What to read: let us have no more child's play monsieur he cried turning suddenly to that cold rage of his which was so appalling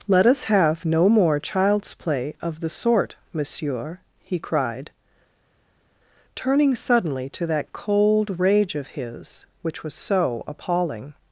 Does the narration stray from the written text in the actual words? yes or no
yes